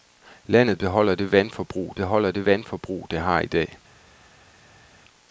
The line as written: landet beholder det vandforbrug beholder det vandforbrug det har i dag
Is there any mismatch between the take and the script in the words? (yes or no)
no